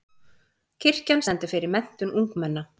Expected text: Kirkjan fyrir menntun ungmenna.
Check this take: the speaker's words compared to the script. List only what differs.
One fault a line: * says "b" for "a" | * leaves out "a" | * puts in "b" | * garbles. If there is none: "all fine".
* puts in "stendur"